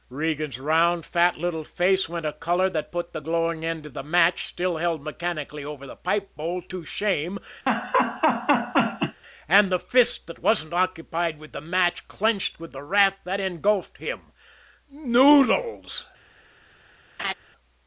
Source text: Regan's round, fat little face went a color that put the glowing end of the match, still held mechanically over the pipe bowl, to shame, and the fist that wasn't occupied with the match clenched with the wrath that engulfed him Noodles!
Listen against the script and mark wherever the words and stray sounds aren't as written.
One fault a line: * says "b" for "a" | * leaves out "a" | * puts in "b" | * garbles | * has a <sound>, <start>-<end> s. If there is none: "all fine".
* has a laugh, 7.7-9.2 s
* has a laugh, 17.2-17.3 s